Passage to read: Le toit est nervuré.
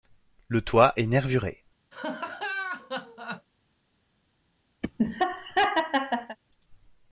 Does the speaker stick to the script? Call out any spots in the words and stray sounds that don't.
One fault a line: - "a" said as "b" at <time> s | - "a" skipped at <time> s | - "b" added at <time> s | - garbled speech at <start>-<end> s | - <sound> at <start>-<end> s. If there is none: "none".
- laugh at 1.9-3.5 s
- laugh at 4.8-6.4 s